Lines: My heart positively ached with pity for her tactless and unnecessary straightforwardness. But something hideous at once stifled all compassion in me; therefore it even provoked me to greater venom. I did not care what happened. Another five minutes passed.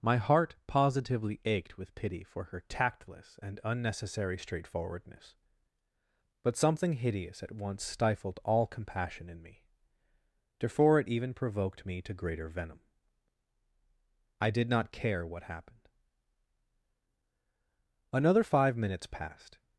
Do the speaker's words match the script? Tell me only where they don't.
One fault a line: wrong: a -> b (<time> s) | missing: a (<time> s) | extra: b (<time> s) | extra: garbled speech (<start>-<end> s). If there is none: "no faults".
no faults